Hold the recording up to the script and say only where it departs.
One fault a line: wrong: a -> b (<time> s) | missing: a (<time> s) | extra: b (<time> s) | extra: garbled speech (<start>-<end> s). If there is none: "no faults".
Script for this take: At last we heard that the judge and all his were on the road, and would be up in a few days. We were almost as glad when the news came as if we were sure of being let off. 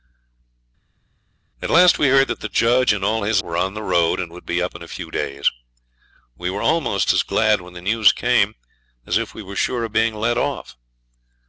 no faults